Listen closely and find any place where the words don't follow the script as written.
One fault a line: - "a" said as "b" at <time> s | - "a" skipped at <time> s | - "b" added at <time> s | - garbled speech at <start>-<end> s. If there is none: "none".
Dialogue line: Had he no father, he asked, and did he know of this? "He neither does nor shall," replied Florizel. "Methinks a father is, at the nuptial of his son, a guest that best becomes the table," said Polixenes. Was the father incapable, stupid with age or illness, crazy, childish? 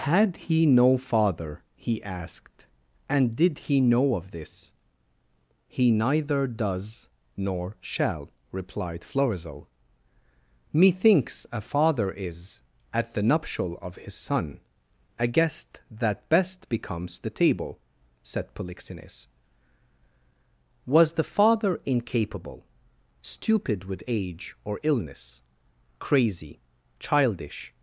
none